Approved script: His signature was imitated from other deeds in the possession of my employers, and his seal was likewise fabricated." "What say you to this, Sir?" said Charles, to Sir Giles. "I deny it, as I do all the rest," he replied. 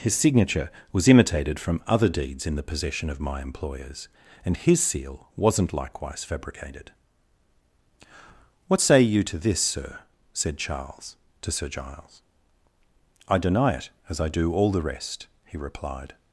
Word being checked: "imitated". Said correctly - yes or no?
yes